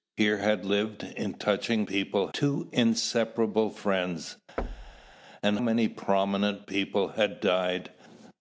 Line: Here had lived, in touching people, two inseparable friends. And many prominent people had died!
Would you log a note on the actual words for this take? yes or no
no